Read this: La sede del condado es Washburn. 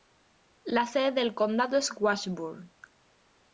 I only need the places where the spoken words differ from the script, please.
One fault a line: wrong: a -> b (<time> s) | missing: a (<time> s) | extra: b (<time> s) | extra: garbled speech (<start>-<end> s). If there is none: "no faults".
no faults